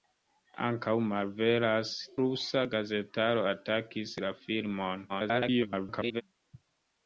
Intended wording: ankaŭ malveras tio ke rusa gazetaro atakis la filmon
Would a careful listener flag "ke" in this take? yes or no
yes